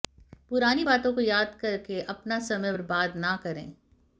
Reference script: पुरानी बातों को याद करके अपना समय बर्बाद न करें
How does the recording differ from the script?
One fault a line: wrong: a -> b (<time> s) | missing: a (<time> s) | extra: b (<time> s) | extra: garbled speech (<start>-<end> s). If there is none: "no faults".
no faults